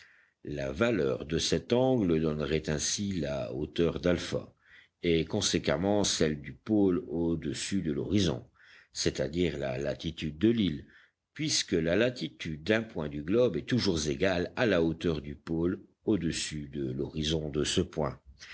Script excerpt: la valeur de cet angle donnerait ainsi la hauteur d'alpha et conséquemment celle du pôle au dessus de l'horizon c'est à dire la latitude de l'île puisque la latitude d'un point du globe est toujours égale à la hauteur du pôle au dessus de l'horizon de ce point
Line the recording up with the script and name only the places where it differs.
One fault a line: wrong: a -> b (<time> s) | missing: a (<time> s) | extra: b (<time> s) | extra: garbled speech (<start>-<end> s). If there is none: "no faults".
no faults